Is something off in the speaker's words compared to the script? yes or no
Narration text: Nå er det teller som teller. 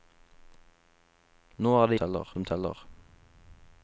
no